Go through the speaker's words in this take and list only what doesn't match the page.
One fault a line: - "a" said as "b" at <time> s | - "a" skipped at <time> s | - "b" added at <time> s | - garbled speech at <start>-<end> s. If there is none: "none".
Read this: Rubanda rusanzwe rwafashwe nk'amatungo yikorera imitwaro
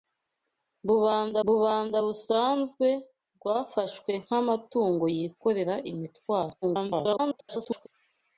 - "rubanda" added at 1.5 s
- garbled speech at 6.6-7.9 s